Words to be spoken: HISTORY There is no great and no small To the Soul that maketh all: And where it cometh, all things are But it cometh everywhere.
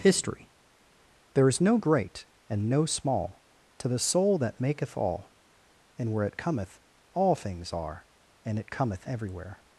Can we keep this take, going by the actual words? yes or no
no